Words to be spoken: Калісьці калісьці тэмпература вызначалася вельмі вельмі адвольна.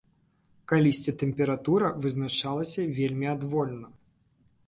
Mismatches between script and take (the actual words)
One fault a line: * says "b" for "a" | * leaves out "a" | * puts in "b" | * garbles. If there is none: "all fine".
* leaves out "калісьці"
* leaves out "вельмі"